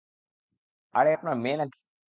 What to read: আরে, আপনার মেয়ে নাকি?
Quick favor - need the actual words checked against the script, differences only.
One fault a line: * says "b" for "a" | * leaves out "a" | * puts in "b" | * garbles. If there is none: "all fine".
all fine